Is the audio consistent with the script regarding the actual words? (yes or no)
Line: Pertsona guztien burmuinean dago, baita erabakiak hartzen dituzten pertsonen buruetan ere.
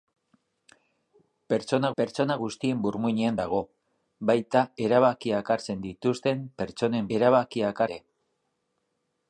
no